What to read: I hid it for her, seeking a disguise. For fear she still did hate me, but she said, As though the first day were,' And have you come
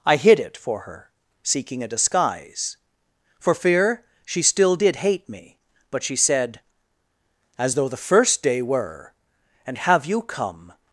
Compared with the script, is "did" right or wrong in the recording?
right